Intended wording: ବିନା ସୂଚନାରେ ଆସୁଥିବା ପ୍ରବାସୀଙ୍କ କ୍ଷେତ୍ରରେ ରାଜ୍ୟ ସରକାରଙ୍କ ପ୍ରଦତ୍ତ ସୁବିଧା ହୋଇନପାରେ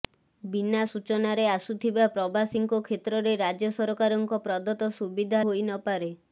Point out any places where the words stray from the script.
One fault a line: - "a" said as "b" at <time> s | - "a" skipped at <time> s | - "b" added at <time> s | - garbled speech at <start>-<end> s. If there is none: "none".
none